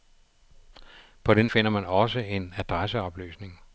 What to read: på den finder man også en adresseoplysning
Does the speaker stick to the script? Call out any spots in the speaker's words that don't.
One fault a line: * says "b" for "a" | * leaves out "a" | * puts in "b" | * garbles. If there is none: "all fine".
all fine